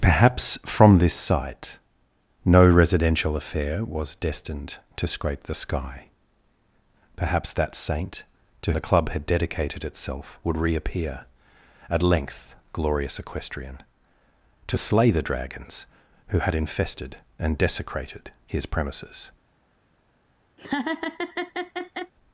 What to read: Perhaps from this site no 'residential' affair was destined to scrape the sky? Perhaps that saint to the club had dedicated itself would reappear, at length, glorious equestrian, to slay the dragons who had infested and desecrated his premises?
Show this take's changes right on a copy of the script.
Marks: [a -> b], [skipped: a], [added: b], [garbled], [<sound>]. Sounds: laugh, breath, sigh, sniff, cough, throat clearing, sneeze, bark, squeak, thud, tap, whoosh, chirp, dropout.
Perhaps from this site no 'residential' affair was destined to scrape the sky? Perhaps that saint to the club had dedicated itself would reappear, at length, glorious equestrian, to slay the dragons who had infested and desecrated his premises? [laugh]